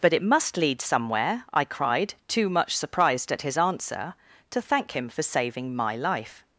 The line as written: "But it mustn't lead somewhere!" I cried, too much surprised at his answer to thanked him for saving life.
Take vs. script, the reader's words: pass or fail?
fail